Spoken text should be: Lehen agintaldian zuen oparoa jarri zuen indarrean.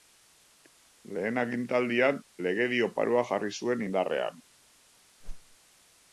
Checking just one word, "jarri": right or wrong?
right